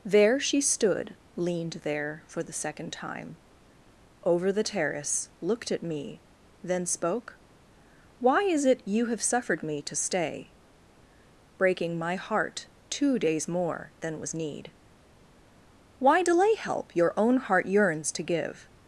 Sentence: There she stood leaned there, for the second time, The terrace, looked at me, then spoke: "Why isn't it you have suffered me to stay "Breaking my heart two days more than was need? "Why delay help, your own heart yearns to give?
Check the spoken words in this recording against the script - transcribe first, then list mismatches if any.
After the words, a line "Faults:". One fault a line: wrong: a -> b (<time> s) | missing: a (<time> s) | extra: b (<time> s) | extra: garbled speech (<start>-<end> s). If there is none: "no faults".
There she stood leaned there, for the second time, Over the terrace, looked at me, then spoke: "Why is it you have suffered me to stay "Breaking my heart two days more than was need? "Why delay help, your own heart yearns to give?
Faults:
extra: Over (4.2 s)
wrong: isn't -> is (8.4 s)